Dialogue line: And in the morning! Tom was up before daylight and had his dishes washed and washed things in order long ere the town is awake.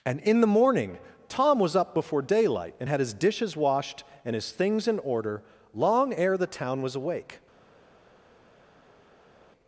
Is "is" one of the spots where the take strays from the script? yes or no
yes